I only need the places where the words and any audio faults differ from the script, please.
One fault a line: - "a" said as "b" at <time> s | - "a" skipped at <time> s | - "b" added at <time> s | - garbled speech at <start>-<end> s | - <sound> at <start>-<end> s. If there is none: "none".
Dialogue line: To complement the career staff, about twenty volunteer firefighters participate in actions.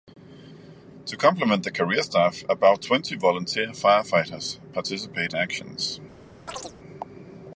- "in" skipped at 5.3 s
- chirp at 6.5-6.7 s